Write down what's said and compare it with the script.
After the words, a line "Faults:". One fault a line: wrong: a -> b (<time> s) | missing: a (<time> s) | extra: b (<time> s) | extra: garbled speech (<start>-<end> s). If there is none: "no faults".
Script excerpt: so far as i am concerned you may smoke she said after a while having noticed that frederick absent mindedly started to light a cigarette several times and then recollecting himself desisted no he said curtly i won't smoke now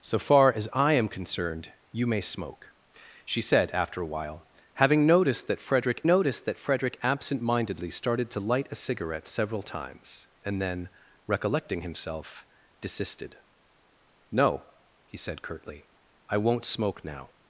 so far as i am concerned you may smoke she said after a while having noticed that frederick noticed that frederick absent mindedly started to light a cigarette several times and then recollecting himself desisted no he said curtly i won't smoke now
Faults:
extra: noticed that frederick (6.0 s)